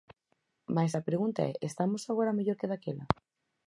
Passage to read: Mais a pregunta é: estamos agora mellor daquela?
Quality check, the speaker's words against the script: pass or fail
fail